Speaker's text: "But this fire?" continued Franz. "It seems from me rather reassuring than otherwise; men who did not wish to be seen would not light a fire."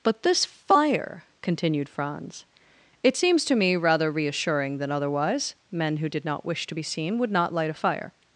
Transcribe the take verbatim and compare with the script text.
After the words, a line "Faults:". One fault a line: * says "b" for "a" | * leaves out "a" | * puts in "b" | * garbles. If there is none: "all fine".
"But this fire?" continued Franz. "It seems to me rather reassuring than otherwise; men who did not wish to be seen would not light a fire."
Faults:
* says "to" for "from"